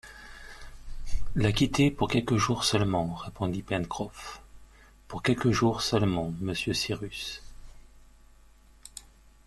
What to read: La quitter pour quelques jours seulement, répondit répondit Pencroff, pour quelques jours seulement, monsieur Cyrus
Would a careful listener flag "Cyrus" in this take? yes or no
no